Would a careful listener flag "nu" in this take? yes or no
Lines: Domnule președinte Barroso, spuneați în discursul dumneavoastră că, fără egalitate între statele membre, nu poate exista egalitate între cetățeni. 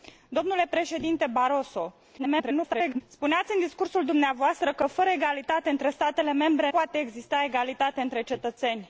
yes